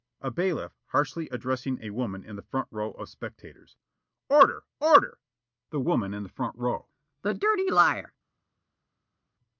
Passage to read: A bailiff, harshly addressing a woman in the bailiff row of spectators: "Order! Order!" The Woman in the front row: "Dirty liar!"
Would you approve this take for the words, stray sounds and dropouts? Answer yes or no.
no